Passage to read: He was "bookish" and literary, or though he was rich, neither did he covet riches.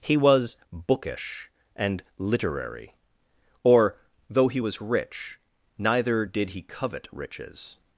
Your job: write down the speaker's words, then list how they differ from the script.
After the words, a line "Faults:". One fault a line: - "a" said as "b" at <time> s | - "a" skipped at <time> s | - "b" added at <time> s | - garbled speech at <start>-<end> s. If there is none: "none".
He was "bookish" and literary, or though he was rich, neither did he covet riches.
Faults:
none